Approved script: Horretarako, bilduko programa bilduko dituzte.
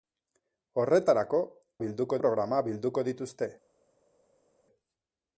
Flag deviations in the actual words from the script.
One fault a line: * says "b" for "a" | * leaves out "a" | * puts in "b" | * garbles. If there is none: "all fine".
all fine